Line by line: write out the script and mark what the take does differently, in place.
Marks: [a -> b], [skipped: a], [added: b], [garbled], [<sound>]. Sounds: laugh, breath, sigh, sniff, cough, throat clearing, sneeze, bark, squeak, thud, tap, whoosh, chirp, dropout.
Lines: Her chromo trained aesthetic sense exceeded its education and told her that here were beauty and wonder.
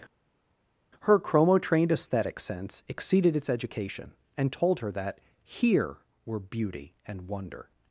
Her chromo trained aesthetic sense exceeded its education and told her that here were beauty and wonder.